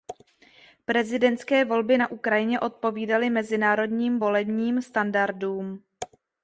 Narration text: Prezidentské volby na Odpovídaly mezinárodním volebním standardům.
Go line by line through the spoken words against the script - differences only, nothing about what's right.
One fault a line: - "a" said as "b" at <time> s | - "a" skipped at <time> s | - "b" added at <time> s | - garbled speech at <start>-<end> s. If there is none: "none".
- "Ukrajině" added at 2.1 s